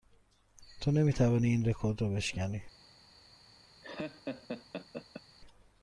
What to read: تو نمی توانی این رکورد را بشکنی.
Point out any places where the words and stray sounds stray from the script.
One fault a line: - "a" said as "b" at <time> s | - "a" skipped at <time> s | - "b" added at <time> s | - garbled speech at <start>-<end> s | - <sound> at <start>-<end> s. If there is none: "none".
- laugh at 3.8-5.2 s